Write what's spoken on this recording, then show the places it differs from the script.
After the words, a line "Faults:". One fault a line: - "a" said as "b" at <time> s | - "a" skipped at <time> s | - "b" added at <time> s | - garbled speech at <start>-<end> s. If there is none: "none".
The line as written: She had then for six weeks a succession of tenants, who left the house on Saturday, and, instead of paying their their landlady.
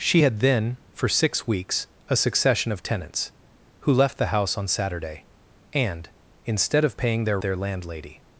She had then for six weeks a succession of tenants, who left the house on Saturday, and, instead of paying their their landlady.
Faults:
none